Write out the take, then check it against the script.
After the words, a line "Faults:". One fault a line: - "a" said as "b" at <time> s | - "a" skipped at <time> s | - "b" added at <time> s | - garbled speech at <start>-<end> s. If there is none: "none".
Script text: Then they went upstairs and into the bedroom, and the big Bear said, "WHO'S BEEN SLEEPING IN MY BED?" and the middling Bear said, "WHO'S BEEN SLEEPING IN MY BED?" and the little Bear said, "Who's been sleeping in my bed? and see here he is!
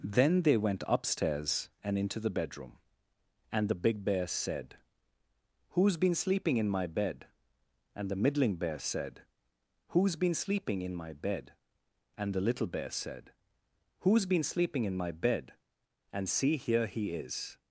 Then they went upstairs and into the bedroom, and the big Bear said, "WHO'S BEEN SLEEPING IN MY BED?" and the middling Bear said, "WHO'S BEEN SLEEPING IN MY BED?" and the little Bear said, "Who's been sleeping in my bed? and see here he is!
Faults:
none